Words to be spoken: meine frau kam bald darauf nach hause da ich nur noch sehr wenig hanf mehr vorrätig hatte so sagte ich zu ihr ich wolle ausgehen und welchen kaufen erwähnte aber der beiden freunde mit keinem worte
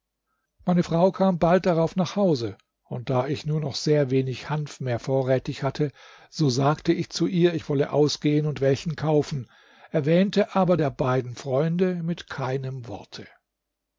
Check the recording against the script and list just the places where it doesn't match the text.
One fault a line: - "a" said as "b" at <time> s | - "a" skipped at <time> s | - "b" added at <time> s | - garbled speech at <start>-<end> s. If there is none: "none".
- "und" added at 2.8 s